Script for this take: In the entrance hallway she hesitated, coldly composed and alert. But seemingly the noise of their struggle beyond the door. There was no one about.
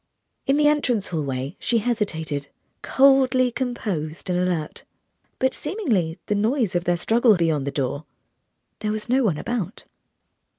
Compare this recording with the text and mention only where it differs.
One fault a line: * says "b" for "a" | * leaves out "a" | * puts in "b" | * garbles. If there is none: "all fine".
all fine